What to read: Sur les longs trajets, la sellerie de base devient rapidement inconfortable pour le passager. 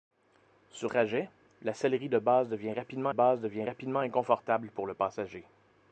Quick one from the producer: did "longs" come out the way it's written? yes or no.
no